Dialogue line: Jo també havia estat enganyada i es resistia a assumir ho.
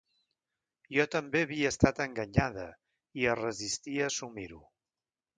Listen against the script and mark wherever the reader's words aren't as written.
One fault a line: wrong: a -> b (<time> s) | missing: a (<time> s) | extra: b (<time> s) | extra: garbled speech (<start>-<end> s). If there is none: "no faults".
no faults